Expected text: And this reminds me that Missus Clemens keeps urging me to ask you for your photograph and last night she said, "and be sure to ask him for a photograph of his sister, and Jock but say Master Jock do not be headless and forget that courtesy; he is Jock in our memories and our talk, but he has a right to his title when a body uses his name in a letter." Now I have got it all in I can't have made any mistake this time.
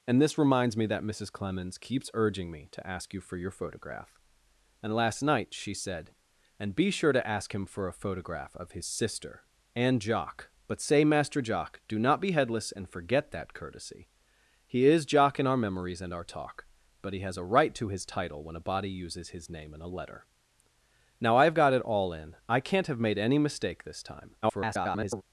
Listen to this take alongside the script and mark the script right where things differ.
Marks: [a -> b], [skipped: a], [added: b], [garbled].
And this reminds me that Missus Clemens keeps urging me to ask you for your photograph and last night she said, "and be sure to ask him for a photograph of his sister, and Jock but say Master Jock do not be headless and forget that courtesy; he is Jock in our memories and our talk, but he has a right to his title when a body uses his name in a letter." Now I have got it all in I can't have made any mistake this time. [garbled]